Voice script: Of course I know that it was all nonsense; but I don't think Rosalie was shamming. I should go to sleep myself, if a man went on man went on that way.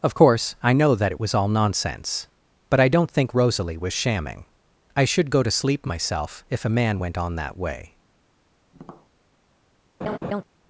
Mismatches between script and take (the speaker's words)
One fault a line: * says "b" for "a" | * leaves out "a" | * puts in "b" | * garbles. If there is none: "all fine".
* leaves out "man went on"